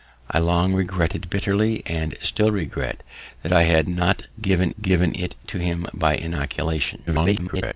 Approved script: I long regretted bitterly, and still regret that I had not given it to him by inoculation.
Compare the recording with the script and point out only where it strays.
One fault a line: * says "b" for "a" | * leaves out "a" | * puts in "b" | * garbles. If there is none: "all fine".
* puts in "given"
* garbles